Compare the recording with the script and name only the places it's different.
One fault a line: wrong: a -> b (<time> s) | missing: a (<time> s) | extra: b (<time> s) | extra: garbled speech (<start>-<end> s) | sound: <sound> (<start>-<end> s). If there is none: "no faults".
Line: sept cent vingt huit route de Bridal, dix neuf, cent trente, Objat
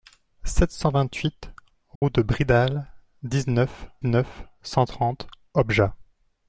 sound: dropout (2.0-2.0 s)
extra: neuf (4.0 s)